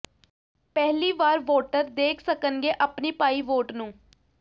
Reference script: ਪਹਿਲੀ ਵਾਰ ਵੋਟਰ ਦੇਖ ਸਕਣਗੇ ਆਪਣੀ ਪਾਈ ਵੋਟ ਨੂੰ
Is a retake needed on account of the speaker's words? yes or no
no